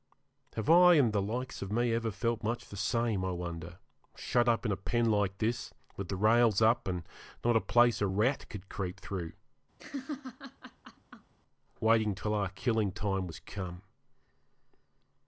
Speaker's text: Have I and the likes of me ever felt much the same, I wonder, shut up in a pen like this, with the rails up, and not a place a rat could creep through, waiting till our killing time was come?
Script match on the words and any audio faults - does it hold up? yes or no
no